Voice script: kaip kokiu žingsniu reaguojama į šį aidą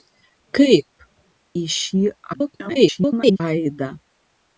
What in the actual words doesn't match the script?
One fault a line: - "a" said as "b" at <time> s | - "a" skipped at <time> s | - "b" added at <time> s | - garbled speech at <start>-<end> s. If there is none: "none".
- "kokiu žingsniu reaguojama" skipped at 0.9 s
- garbled speech at 2.3-3.4 s